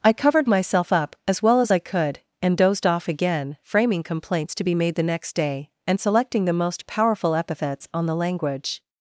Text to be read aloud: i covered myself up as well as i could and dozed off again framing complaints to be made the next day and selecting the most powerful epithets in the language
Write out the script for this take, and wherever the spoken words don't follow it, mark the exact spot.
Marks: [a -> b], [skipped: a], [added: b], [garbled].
i covered myself up as well as i could and dozed off again framing complaints to be made the next day and selecting the most powerful epithets [in -> on] the language